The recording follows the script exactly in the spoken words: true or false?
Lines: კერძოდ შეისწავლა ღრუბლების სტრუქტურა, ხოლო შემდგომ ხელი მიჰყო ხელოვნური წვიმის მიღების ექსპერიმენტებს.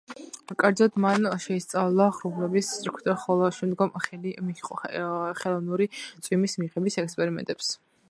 false